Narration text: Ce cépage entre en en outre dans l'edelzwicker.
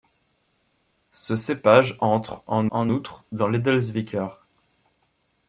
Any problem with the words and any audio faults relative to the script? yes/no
no